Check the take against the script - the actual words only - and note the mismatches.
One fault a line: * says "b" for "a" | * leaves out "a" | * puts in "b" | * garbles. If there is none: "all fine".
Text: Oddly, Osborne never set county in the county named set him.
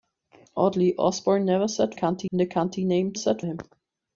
all fine